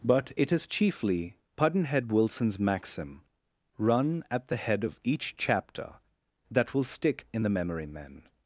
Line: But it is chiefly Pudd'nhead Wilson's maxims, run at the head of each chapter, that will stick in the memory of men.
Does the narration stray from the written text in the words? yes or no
yes